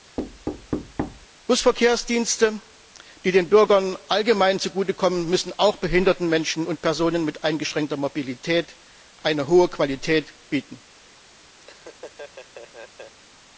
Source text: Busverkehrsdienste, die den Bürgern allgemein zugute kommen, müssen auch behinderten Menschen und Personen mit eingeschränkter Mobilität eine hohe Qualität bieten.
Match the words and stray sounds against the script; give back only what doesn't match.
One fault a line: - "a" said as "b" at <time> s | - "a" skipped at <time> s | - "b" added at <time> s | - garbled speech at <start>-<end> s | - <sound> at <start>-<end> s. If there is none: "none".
- thud at 0.2-1.3 s
- laugh at 11.6-13.2 s